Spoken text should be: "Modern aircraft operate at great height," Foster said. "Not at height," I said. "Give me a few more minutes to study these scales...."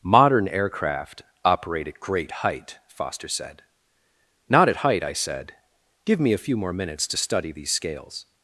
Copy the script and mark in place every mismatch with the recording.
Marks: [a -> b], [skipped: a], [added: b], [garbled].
"Modern aircraft operate at great height," Foster said. "Not at height," I said. "Give me a few more minutes to study these scales...."